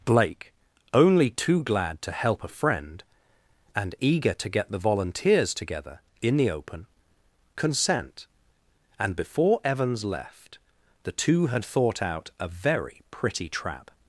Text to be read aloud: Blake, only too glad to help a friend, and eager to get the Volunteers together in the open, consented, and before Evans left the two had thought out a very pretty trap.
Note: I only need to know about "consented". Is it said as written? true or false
false